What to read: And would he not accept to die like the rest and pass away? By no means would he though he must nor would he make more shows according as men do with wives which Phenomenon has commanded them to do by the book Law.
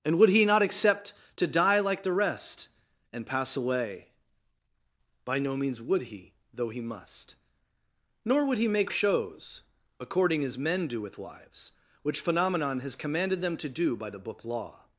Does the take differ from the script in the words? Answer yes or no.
yes